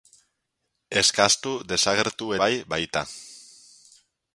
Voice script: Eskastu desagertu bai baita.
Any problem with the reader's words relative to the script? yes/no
no